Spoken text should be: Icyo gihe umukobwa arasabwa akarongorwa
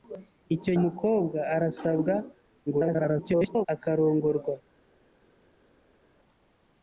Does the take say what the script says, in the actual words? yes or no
no